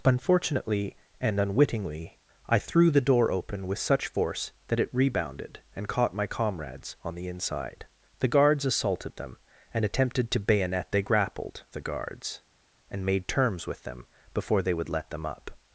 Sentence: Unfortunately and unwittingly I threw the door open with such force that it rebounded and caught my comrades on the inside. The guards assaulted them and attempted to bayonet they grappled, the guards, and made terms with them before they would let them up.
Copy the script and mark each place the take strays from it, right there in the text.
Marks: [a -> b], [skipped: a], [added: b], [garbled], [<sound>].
Unfortunately and unwittingly I threw the door open with such force that it rebounded and caught my comrades on the inside. The guards assaulted them and attempted to bayonet they grappled, the guards, and made terms with them before they would let them up.